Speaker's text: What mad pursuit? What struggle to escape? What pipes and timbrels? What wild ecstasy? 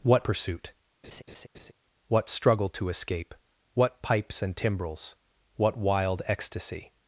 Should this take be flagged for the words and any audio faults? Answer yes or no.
yes